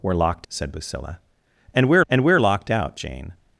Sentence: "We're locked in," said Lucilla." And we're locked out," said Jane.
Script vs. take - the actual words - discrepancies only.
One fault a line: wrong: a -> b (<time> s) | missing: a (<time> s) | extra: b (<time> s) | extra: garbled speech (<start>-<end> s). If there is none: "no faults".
missing: in (0.5 s)
extra: and we're (2.1 s)
missing: said (3.0 s)